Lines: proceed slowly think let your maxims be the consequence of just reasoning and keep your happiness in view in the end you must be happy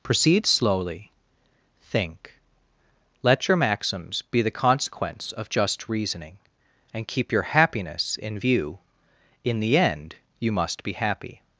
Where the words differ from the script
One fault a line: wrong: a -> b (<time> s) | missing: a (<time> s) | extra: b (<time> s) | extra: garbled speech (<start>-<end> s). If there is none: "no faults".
no faults